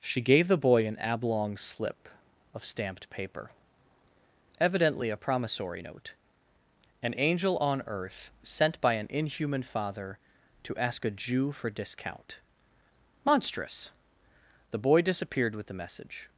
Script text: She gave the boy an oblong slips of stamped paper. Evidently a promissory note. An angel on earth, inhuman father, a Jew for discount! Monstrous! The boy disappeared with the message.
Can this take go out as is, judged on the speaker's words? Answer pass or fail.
fail